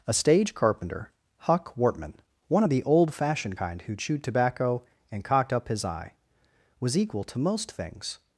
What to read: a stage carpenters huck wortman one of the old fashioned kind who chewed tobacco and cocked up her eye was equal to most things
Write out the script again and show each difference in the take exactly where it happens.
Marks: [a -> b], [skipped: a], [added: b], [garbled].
a stage [carpenters -> carpenter] huck wortman one of the old fashioned kind who chewed tobacco and cocked up [her -> his] eye was equal to most things